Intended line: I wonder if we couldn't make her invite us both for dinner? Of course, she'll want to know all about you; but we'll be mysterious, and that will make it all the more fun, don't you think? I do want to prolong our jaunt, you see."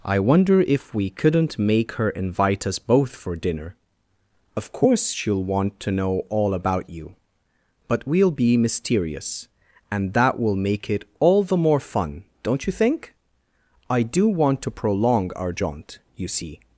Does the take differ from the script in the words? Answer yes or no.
no